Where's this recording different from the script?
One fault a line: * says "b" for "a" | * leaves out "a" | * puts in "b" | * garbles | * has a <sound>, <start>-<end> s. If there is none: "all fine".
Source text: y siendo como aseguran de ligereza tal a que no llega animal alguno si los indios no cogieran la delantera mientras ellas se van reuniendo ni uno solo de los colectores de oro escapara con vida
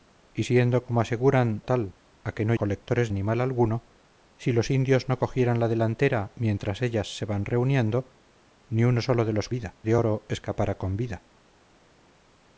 * leaves out "de ligereza"
* says "colectores" for "llega"
* says "vida" for "colectores"